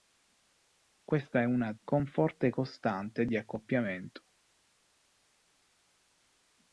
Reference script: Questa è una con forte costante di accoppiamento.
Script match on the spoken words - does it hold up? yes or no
yes